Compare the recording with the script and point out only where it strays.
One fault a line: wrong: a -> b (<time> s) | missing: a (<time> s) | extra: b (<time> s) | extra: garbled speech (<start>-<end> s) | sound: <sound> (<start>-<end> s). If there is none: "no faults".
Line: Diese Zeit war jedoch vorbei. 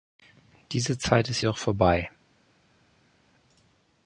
wrong: war -> ist (1.3 s)